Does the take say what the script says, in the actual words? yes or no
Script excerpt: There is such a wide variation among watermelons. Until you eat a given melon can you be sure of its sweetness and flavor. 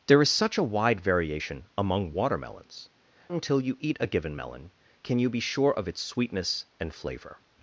yes